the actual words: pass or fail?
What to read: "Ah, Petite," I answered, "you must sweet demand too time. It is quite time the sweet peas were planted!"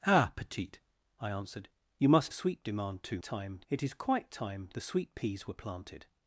pass